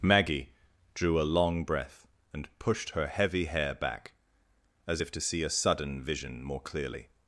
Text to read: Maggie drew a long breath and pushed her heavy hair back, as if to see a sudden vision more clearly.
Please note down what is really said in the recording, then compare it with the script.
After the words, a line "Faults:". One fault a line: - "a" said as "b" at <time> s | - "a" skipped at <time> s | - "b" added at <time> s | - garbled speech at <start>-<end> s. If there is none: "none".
Maggie drew a long breath and pushed her heavy hair back, as if to see a sudden vision more clearly.
Faults:
none